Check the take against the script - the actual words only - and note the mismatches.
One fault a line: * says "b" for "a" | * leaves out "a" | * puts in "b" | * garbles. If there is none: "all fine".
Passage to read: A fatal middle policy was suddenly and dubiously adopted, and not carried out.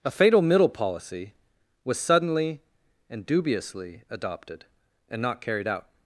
all fine